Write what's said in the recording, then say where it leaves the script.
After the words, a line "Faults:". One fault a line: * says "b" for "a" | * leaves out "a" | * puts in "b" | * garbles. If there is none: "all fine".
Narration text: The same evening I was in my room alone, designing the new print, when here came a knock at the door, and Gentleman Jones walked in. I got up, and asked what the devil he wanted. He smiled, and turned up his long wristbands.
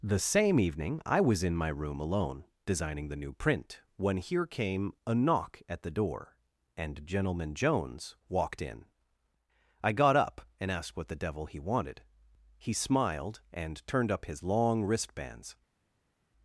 The same evening I was in my room alone, designing the new print, when here came a knock at the door, and Gentleman Jones walked in. I got up, and asked what the devil he wanted. He smiled, and turned up his long wristbands.
Faults:
all fine